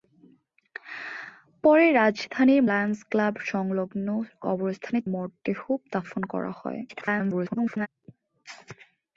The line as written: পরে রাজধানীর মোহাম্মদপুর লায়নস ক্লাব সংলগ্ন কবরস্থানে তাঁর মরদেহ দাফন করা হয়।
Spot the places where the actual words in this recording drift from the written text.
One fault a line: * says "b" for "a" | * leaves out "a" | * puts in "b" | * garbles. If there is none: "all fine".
* leaves out "মোহাম্মদপুর"
* leaves out "তাঁর"
* garbles